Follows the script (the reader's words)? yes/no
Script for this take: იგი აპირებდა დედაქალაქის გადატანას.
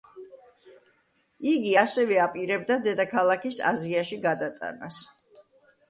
no